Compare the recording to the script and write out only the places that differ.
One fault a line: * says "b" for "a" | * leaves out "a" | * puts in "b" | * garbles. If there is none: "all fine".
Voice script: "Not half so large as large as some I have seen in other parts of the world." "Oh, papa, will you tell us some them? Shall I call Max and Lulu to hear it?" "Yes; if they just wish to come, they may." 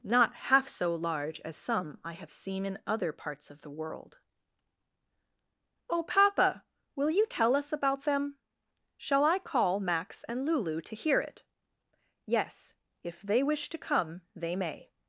* leaves out "large as"
* says "about" for "some"
* leaves out "just"